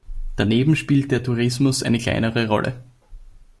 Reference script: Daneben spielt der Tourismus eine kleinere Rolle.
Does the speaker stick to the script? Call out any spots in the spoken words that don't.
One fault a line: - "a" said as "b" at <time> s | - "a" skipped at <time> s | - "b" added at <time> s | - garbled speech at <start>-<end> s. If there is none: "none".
none